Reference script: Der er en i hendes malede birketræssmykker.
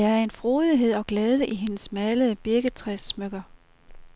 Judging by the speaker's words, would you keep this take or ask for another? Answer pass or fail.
fail